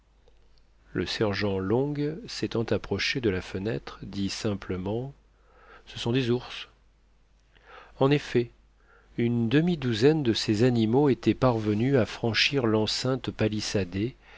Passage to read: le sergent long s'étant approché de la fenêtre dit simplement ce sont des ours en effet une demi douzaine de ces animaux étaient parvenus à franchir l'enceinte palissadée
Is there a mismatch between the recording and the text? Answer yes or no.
no